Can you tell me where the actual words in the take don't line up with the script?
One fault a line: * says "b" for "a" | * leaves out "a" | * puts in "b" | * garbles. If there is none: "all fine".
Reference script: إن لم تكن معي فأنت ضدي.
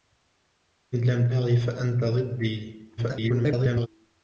* leaves out "تكن"
* garbles